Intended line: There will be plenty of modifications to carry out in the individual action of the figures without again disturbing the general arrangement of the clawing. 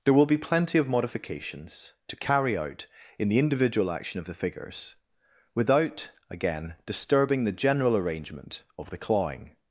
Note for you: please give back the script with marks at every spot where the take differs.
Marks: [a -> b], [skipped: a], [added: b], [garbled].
There will be plenty of modifications to carry out in the individual action of the figures without again disturbing the general arrangement of the clawing.